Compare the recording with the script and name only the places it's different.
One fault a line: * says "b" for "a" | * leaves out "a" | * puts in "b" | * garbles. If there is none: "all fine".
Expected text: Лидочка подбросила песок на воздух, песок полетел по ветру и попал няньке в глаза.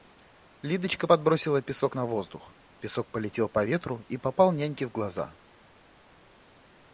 all fine